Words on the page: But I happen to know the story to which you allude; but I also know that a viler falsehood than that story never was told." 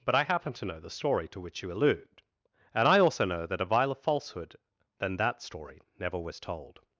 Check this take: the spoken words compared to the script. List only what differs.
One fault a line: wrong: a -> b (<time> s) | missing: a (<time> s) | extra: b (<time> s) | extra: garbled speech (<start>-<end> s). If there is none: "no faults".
wrong: but -> and (2.7 s)